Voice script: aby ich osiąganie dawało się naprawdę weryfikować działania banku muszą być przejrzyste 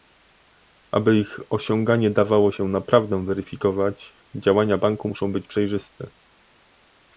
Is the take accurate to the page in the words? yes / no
yes